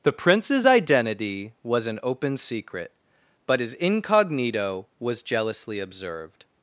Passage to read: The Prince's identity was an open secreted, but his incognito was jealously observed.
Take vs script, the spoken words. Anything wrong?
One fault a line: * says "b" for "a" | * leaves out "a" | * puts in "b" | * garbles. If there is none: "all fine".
* says "secret" for "secreted"